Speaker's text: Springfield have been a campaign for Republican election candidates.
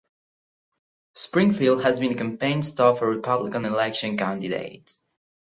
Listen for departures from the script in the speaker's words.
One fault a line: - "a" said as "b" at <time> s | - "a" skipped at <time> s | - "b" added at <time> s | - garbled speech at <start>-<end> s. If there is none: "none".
- "have" said as "has" at 1.8 s
- "stop" added at 2.6 s